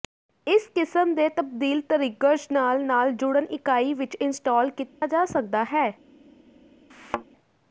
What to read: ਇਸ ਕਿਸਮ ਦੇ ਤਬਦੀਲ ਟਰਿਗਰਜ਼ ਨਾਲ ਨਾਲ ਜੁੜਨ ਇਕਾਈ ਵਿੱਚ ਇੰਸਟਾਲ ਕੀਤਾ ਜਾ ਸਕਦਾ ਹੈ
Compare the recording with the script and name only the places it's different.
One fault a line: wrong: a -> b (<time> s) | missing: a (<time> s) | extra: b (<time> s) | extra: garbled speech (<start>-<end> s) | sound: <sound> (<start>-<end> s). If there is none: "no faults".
sound: dropout (4.9-5.0 s)
sound: thud (6.9-7.3 s)